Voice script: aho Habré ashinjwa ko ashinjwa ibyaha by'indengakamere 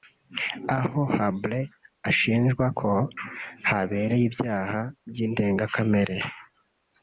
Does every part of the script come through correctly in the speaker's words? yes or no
no